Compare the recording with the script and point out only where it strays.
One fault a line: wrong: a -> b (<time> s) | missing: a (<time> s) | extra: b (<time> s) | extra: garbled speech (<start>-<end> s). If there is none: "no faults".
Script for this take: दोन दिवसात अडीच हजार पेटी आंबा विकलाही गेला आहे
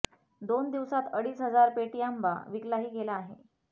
no faults